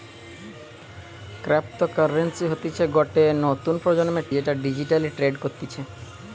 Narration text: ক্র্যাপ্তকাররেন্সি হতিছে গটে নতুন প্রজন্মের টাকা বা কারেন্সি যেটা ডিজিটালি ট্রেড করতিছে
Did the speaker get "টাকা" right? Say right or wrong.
wrong